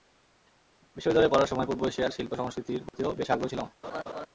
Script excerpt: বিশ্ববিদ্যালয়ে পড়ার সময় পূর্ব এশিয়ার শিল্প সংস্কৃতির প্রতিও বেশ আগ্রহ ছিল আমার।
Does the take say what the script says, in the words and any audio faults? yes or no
no